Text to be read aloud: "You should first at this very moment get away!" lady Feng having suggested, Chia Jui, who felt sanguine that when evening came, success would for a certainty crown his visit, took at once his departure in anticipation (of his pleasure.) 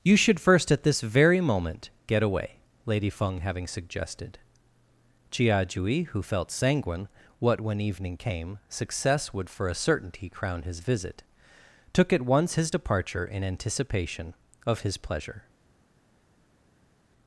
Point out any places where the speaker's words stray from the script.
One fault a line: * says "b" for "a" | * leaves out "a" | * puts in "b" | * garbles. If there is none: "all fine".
* says "what" for "that"